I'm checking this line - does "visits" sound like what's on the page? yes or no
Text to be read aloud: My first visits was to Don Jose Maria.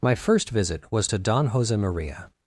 no